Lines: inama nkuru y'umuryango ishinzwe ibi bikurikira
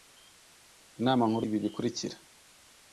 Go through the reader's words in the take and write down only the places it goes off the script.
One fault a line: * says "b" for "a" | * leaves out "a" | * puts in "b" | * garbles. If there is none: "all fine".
* leaves out "y'umuryango ishinzwe"